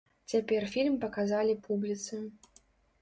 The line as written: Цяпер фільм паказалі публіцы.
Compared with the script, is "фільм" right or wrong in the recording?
right